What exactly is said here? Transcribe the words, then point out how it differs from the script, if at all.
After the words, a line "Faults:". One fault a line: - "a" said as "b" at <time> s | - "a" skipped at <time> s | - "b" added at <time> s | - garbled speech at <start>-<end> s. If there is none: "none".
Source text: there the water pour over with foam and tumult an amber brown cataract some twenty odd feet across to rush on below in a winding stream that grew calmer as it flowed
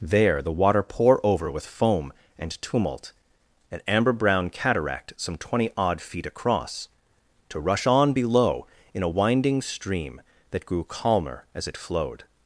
there the water pour over with foam and tumult an amber brown cataract some twenty odd feet across to rush on below in a winding stream that grew calmer as it flowed
Faults:
none